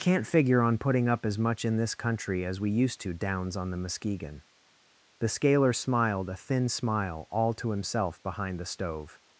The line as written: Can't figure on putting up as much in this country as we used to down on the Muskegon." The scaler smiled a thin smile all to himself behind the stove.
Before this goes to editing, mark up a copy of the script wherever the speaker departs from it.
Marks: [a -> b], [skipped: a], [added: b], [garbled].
Can't figure on putting up as much in this country as we used to [down -> downs] on the Muskegon." The scaler smiled a thin smile all to himself behind the stove.